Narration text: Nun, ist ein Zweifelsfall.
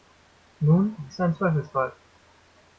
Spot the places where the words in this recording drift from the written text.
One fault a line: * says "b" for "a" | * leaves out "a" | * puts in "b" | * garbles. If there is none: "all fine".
all fine